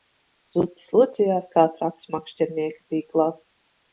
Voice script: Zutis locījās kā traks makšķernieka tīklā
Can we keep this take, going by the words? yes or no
yes